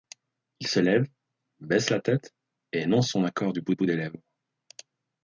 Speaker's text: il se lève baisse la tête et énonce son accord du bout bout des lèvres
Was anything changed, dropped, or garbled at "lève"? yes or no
no